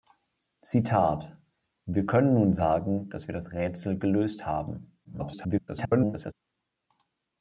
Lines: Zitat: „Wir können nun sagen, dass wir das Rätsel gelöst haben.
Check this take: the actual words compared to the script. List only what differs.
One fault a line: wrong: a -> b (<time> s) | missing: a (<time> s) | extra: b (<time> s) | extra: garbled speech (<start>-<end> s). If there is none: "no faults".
extra: garbled speech (5.0-6.3 s)